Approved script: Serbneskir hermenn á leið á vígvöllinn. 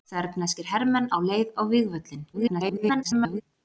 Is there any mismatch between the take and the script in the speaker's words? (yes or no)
yes